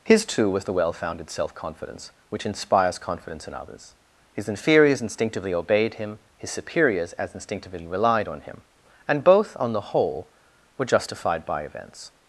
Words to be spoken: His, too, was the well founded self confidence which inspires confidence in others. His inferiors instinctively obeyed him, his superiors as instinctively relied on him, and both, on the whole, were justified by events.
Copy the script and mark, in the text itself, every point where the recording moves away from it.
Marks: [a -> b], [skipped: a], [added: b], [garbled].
His, too, was the well founded self confidence which inspires confidence in others. His inferiors instinctively obeyed him, his superiors as instinctively relied on him, and both, on the whole, were justified by events.